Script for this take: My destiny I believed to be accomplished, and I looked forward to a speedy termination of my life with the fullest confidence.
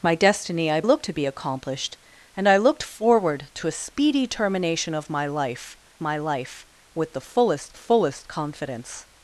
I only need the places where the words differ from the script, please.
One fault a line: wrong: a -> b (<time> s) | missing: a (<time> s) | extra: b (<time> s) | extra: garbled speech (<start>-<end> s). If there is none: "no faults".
wrong: believed -> looked (0.8 s)
extra: my life (6.0 s)
extra: fullest (7.7 s)